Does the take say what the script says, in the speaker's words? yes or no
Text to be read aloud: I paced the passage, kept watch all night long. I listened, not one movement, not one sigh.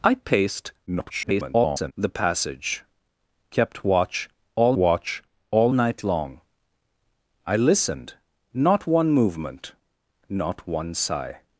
no